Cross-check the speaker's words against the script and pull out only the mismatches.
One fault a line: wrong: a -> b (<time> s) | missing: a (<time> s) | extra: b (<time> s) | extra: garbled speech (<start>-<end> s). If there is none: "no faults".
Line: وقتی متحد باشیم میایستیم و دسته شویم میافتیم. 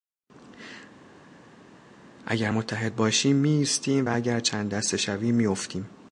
wrong: وقتی -> اگر (2.3 s)
extra: اگر چند (4.1 s)